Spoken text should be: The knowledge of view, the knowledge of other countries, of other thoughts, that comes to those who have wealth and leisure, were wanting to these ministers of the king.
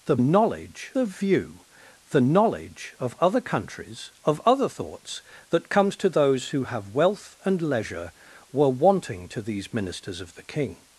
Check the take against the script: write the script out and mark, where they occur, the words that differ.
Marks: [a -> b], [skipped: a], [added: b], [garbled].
The knowledge of view, the knowledge of other countries, of other thoughts, that comes to those who have wealth and leisure, were wanting to these ministers of the king.